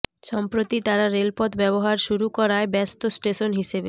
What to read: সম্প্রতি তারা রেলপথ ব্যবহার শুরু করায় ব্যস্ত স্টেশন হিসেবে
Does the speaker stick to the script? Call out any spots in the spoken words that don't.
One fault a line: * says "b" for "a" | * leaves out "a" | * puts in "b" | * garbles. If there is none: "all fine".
all fine